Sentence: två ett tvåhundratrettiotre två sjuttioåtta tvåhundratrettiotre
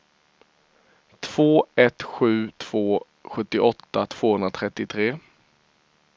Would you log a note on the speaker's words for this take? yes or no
yes